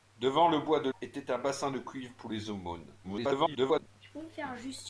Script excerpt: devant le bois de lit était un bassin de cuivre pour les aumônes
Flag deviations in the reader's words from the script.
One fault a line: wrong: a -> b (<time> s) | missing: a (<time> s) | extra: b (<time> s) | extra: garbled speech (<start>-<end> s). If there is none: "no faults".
missing: lit (0.9 s)
extra: garbled speech (3.0-3.9 s)